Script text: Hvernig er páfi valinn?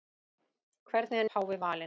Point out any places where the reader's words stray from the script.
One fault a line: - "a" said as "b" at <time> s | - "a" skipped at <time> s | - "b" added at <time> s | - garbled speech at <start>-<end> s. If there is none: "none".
none